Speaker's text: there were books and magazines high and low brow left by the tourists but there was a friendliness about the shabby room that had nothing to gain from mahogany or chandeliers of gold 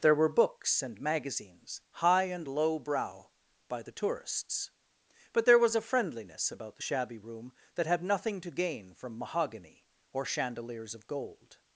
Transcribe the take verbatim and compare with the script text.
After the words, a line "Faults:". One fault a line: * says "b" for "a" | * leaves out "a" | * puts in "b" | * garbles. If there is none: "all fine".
there were books and magazines high and low brow by the tourists but there was a friendliness about the shabby room that had nothing to gain from mahogany or chandeliers of gold
Faults:
* leaves out "left"